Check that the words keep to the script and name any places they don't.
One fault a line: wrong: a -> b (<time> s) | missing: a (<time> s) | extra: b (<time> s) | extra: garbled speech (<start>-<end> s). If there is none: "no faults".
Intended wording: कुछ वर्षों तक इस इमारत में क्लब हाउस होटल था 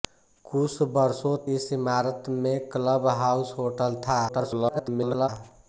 missing: तक (1.4 s)
extra: garbled speech (4.3-5.3 s)